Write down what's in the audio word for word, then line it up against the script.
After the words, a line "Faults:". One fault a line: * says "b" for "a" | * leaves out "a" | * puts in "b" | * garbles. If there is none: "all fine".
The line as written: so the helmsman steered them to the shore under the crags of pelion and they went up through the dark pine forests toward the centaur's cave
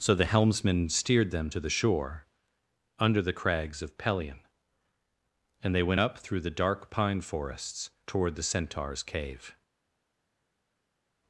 so the helmsman steered them to the shore under the crags of pelion and they went up through the dark pine forests toward the centaur's cave
Faults:
all fine